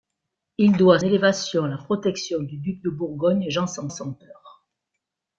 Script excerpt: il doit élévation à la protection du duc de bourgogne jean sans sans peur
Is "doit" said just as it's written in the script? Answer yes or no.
yes